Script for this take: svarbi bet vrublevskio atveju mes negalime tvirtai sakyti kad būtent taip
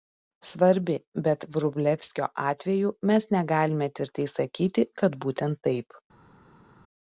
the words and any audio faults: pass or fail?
pass